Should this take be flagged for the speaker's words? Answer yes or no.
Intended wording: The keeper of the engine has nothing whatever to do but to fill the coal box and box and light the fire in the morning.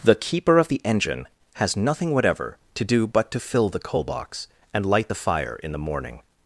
yes